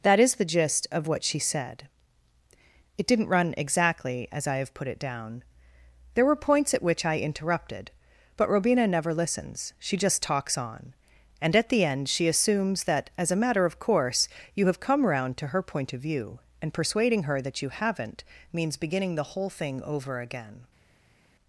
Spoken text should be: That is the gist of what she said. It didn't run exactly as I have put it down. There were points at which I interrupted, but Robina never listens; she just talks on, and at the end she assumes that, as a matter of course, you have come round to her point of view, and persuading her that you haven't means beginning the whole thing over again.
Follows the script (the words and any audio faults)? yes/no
yes